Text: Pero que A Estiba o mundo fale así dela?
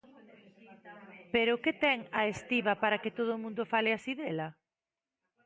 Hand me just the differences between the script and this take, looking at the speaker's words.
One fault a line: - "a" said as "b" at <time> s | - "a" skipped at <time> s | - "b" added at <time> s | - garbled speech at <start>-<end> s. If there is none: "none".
- "ten" added at 1.8 s
- "para que todo" added at 2.8 s